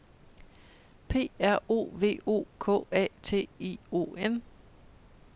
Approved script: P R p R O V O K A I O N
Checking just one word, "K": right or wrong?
right